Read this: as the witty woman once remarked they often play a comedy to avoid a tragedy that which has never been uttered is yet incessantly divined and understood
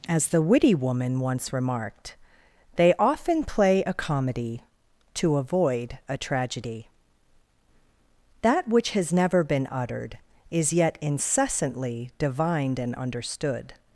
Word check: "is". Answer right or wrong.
right